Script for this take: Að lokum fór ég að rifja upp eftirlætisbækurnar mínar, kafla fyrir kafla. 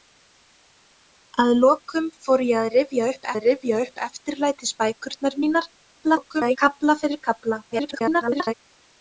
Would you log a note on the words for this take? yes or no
yes